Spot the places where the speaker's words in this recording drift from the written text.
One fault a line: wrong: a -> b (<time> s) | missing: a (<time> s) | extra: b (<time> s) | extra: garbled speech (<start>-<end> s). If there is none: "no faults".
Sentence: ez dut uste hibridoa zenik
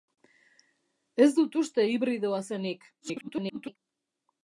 extra: garbled speech (3.0-3.8 s)